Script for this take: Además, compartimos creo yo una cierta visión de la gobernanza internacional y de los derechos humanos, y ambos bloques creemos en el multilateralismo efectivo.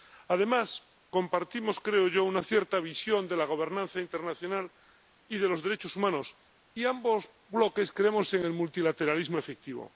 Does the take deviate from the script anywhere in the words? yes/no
no